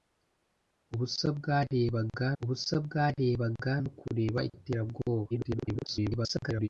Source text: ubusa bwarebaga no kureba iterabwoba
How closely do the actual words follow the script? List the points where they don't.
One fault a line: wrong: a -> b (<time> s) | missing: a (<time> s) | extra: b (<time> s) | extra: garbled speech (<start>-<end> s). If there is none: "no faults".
extra: ubusa bwarebaga (2.4 s)
extra: garbled speech (5.3-6.7 s)